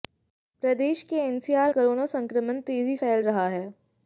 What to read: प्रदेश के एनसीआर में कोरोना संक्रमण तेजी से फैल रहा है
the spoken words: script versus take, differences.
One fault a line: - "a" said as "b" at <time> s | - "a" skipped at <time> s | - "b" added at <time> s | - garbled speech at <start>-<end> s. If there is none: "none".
- "में" skipped at 1.7 s
- "से" skipped at 3.0 s